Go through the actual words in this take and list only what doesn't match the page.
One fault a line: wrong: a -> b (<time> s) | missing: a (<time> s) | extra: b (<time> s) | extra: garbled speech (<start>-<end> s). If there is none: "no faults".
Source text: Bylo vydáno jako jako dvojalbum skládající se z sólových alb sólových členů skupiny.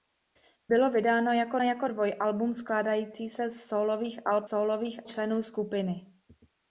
no faults